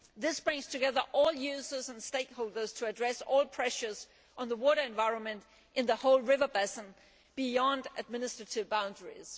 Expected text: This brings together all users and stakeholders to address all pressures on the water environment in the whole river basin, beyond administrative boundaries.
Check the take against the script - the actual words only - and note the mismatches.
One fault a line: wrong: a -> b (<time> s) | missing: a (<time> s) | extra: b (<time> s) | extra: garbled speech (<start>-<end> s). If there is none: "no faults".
no faults